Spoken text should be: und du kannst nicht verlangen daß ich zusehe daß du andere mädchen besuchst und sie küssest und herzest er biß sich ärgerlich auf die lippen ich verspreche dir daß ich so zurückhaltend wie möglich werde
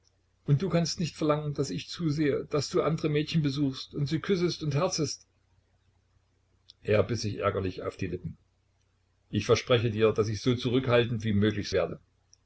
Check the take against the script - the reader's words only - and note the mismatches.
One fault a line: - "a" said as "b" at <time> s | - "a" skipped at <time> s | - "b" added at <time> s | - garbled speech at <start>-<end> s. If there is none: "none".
none